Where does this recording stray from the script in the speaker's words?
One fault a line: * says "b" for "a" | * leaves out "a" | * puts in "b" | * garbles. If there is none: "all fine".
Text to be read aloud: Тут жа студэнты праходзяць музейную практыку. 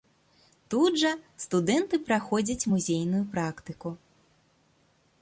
all fine